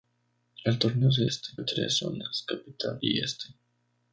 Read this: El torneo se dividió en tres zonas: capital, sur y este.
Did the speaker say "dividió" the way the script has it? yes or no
no